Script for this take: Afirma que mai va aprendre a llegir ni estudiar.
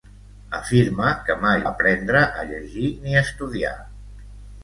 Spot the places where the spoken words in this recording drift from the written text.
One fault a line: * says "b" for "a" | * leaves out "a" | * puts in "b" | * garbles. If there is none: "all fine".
* leaves out "va"